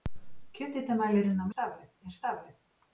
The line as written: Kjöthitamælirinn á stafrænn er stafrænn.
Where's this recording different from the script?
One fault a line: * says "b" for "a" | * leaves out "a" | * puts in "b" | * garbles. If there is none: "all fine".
all fine